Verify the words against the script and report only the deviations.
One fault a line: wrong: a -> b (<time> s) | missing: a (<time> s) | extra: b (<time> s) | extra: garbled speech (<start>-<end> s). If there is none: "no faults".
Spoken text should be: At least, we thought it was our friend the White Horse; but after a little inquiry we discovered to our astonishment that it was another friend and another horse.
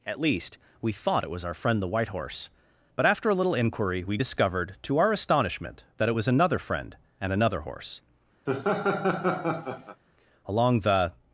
extra: Along the (10.5 s)